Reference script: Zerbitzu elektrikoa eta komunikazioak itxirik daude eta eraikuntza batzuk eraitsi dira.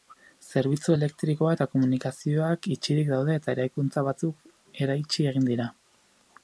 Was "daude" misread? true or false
false